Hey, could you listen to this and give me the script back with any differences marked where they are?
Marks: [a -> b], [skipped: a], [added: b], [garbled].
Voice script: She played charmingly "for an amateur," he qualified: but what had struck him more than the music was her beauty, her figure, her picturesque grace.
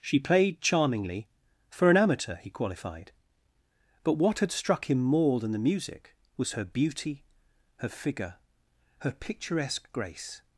She played charmingly "for an amateur," he qualified: but what had struck him more than the music was her beauty, her figure, her picturesque grace.